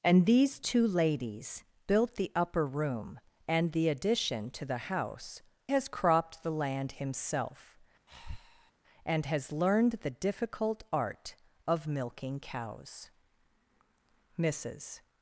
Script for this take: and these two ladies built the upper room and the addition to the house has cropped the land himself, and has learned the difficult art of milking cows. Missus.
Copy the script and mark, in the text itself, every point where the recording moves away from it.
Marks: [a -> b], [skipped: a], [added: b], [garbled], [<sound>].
and these two ladies built the upper room and the addition to the house has cropped the land himself, [breath] and has learned the difficult art of milking cows. Missus.